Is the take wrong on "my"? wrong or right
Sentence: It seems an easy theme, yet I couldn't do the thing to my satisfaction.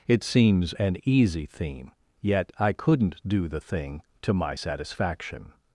right